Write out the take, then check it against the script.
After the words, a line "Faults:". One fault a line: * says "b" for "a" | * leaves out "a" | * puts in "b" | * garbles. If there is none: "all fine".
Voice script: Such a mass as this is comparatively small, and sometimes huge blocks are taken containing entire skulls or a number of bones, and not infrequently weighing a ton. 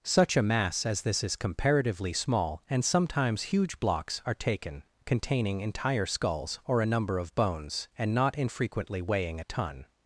Such a mass as this is comparatively small, and sometimes huge blocks are taken containing entire skulls or a number of bones, and not infrequently weighing a ton.
Faults:
all fine